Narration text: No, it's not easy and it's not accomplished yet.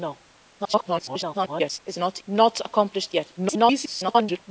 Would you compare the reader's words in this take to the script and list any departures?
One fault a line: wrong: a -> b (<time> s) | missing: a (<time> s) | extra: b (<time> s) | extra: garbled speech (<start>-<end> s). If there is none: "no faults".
extra: garbled speech (0.6-1.8 s)
missing: easy and it's (2.2 s)
extra: garbled speech (3.4-4.4 s)